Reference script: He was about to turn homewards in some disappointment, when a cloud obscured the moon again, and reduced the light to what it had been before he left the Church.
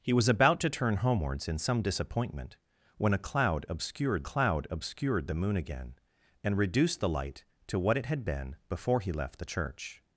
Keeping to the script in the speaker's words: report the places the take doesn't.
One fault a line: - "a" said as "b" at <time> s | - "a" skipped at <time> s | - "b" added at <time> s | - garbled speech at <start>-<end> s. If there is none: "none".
- "cloud obscured" added at 4.2 s